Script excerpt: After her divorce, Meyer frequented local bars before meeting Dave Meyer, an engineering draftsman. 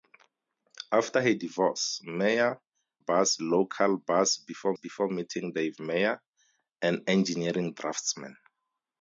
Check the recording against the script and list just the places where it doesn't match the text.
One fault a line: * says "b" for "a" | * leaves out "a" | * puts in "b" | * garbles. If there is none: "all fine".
* says "bars" for "frequented"
* puts in "before"